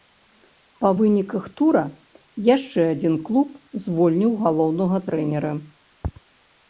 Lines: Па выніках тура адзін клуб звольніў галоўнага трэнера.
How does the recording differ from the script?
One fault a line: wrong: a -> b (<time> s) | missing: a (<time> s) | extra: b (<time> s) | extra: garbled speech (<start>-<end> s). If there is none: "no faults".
extra: яшчэ (2.5 s)